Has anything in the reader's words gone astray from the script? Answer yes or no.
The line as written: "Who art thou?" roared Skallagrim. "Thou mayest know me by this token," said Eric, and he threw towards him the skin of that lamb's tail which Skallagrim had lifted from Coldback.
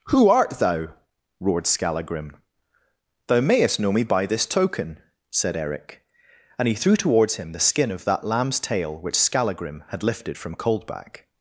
no